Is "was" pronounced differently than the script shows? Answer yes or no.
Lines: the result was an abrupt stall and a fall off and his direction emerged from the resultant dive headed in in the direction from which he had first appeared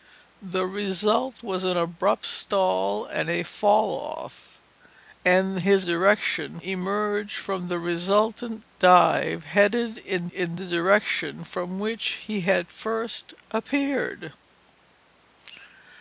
no